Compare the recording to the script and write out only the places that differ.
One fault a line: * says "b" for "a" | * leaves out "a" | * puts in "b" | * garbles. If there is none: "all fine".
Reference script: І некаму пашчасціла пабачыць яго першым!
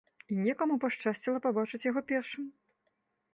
all fine